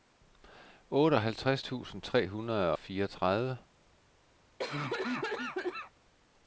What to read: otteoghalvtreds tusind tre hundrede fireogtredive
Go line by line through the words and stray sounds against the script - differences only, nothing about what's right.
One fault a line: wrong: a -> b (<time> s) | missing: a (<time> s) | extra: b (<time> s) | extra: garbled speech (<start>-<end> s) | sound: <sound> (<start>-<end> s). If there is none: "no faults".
sound: cough (4.6-5.9 s)